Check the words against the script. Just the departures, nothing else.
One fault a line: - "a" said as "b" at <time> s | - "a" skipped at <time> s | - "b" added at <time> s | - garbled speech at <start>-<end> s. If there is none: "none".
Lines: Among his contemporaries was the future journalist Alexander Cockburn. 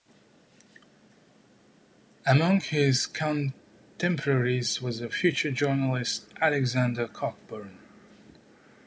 none